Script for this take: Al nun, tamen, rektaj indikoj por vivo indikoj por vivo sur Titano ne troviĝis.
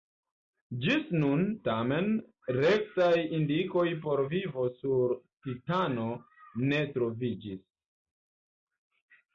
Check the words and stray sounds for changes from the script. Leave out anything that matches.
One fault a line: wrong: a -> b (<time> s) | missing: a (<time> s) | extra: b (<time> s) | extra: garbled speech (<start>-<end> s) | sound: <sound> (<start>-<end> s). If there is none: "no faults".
wrong: Al -> Ĝis (0.8 s)
missing: indikoj por vivo (4.7 s)